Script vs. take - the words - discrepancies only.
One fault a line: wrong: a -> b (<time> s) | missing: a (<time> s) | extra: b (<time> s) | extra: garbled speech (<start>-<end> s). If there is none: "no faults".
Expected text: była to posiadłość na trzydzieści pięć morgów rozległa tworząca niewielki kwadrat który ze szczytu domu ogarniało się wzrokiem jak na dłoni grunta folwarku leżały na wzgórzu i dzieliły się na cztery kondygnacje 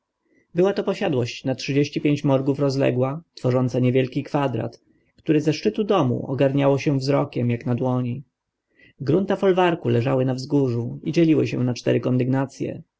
no faults